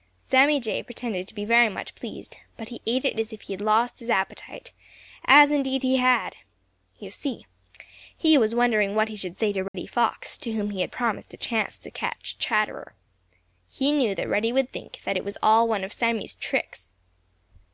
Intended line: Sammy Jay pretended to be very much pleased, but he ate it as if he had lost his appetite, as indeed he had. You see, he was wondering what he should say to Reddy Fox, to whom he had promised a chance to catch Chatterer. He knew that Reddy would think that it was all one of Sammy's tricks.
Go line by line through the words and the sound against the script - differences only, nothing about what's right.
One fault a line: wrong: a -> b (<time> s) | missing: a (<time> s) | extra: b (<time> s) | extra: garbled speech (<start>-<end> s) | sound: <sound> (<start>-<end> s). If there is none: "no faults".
sound: dropout (9.7-9.7 s)